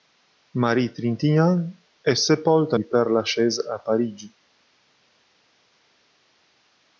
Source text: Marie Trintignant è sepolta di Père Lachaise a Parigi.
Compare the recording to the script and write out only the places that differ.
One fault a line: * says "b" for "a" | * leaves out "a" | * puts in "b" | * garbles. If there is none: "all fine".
all fine